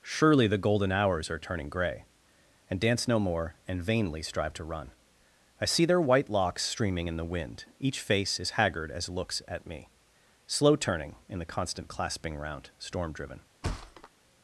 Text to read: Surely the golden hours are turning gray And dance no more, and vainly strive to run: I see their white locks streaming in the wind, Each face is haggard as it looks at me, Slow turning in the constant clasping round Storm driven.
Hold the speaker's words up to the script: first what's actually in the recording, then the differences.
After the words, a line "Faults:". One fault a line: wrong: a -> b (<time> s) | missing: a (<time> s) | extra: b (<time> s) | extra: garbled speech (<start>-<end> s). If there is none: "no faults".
Surely the golden hours are turning gray And dance no more, and vainly strive to run: I see their white locks streaming in the wind, Each face is haggard as looks at me, Slow turning in the constant clasping round Storm driven.
Faults:
missing: it (9.1 s)